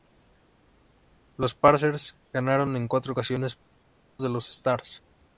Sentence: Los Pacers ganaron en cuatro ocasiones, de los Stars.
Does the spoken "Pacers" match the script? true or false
true